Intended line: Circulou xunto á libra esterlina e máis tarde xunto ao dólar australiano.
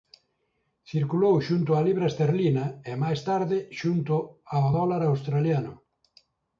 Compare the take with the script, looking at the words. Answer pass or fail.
pass